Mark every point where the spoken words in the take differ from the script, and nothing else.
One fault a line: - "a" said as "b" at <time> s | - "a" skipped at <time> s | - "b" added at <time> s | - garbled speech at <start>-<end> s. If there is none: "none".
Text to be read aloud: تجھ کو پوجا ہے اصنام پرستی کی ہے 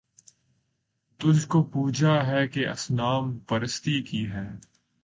- "کہ" added at 2.5 s